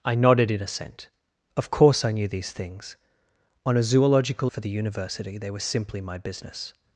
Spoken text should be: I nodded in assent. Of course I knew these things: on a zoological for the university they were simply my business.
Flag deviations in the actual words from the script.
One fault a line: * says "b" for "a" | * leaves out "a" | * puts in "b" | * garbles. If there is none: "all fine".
all fine